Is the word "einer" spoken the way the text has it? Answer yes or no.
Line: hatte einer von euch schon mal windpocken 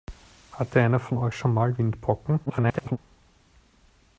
yes